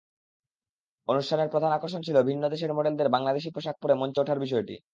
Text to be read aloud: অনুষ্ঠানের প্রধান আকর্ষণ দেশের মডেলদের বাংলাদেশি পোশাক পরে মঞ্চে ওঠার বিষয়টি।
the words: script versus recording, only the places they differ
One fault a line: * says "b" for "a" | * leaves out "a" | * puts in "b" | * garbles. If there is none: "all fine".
* puts in "ছিল ভিন্ন"